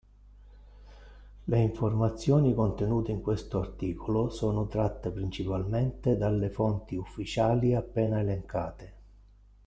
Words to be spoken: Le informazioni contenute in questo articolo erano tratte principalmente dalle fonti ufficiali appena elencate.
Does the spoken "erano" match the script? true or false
false